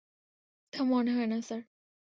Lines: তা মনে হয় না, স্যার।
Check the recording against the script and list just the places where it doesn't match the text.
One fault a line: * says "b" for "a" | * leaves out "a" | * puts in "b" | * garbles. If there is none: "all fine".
all fine